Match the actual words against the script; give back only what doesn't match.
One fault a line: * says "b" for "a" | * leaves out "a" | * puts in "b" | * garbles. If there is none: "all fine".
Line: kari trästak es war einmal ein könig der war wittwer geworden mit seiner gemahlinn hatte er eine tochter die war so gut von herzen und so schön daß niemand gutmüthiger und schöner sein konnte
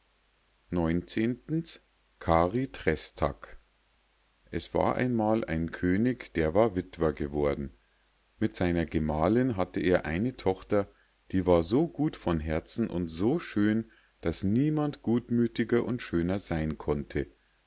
all fine